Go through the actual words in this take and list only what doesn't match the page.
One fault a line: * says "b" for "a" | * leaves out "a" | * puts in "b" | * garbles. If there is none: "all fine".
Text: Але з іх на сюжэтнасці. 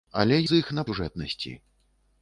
all fine